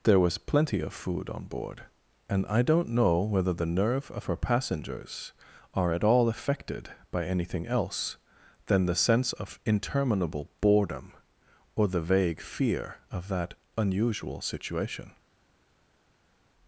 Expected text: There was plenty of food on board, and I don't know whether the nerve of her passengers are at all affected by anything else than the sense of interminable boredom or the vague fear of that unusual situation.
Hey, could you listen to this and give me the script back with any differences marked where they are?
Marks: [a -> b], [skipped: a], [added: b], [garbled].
There was plenty of food on board, and I don't know whether the nerve of her passengers are at all affected by anything else than the sense of interminable boredom or the vague fear of that unusual situation.